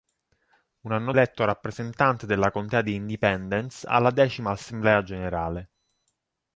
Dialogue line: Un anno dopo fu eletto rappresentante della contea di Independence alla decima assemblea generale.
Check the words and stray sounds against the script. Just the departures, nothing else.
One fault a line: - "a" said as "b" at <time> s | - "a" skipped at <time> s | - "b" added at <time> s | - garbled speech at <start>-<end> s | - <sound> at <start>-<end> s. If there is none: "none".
- "dopo fu" skipped at 1.1 s